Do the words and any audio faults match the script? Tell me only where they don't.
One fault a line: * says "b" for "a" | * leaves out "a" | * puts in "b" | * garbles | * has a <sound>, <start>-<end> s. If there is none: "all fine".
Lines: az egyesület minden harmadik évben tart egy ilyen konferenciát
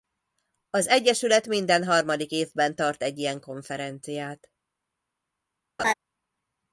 * has a laugh, 5.8-5.9 s